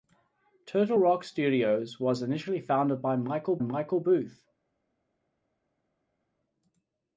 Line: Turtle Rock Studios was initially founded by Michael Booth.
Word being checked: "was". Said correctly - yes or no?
yes